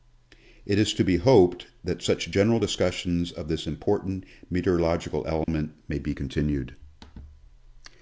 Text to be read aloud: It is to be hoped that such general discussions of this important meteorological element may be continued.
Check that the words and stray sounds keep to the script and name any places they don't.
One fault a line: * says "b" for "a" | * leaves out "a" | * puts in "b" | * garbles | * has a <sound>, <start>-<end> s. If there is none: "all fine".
* has a dropout, 5.4-5.5 s